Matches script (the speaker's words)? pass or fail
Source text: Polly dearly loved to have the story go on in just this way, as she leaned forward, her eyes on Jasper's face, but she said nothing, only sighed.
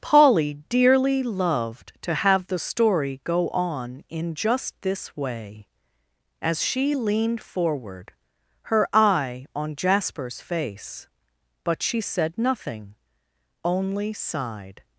fail